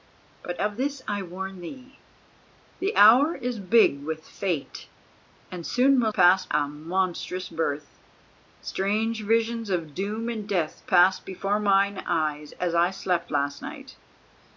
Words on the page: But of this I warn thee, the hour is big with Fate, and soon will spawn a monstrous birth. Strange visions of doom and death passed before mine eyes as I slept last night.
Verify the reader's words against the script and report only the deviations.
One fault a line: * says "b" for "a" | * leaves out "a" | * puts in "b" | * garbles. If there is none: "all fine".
* says "passed" for "spawn"